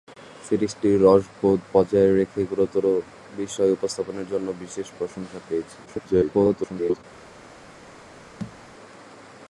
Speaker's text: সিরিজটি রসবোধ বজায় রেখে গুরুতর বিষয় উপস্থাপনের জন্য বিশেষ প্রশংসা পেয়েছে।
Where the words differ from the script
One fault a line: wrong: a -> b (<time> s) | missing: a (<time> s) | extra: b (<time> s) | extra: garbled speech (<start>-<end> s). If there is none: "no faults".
extra: garbled speech (5.9-7.0 s)